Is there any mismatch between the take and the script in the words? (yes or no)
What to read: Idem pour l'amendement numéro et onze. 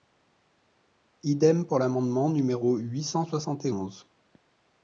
yes